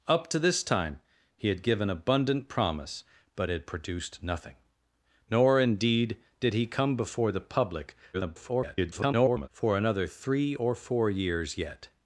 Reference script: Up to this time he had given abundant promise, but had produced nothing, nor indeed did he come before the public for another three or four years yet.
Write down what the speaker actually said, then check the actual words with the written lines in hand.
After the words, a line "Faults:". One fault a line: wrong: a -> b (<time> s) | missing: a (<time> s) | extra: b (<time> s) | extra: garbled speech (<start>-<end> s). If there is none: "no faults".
Up to this time he had given abundant promise, but had produced nothing, nor indeed did he come before the public [garbled] for another three or four years yet.
Faults:
extra: garbled speech (8.1-9.5 s)